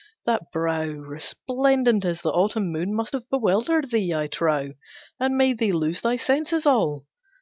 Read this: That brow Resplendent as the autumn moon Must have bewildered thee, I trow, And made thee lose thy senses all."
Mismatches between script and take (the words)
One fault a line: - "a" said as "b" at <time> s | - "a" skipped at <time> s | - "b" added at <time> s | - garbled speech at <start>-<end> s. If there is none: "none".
none